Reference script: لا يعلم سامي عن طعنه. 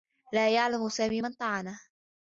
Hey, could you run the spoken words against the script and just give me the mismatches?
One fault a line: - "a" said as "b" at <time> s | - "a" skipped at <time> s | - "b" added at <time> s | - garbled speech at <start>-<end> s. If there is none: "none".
- "عن" said as "من" at 1.2 s